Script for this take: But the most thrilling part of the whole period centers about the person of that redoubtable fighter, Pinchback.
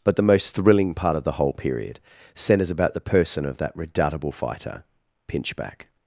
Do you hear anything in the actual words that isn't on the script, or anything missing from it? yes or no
no